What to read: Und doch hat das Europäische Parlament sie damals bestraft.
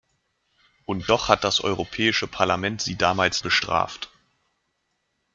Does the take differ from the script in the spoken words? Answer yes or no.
no